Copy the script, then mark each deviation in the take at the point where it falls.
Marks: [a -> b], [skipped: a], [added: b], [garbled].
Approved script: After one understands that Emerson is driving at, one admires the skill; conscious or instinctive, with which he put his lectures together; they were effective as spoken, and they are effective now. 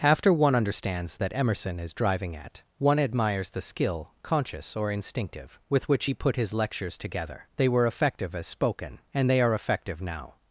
After one understands that Emerson is driving at, one admires the skill; conscious or instinctive, with which he put his lectures together; they were effective as spoken, and they are effective now.